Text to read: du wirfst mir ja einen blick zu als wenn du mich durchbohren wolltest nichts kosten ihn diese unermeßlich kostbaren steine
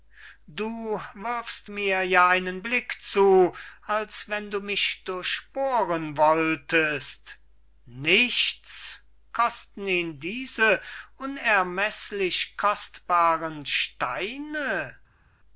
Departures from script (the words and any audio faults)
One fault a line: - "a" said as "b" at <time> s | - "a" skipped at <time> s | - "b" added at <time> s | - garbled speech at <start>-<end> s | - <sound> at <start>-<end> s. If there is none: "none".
none